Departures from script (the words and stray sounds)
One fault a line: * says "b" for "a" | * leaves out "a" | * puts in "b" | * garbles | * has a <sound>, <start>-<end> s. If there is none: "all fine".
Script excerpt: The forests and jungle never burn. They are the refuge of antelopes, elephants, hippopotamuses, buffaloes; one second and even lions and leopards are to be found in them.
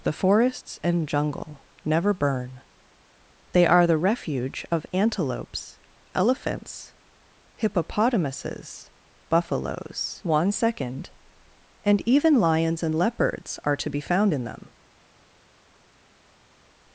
all fine